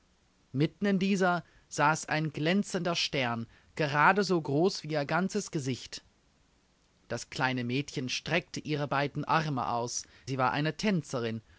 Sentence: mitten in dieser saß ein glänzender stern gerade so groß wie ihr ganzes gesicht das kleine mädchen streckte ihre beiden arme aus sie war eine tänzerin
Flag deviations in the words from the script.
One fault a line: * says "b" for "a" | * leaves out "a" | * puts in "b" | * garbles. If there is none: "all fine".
all fine